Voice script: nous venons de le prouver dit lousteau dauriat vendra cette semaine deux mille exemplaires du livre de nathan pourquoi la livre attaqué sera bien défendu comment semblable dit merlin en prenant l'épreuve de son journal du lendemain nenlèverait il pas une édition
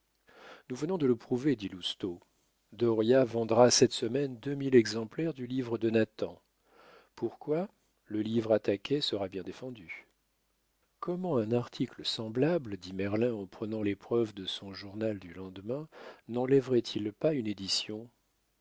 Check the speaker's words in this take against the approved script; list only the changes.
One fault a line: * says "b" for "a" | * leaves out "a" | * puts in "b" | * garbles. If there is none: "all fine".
* says "le" for "la"
* puts in "un article"